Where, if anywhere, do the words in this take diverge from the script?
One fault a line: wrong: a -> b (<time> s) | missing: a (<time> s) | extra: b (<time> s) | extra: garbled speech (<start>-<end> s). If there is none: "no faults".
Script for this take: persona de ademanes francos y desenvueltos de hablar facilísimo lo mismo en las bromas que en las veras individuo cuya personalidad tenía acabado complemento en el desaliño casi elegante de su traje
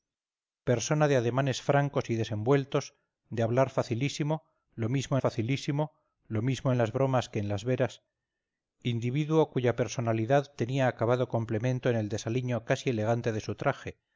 extra: facilísimo lo mismo (5.2 s)